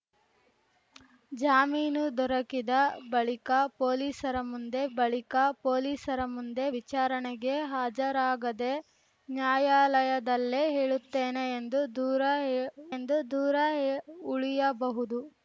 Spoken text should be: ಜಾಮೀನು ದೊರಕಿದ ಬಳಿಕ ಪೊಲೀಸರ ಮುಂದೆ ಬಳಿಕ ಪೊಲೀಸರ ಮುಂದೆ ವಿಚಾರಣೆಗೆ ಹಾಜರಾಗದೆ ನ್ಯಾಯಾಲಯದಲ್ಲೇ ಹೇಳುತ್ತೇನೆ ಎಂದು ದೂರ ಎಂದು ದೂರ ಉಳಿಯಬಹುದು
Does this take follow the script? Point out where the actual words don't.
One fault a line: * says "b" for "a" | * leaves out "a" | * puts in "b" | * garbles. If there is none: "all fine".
all fine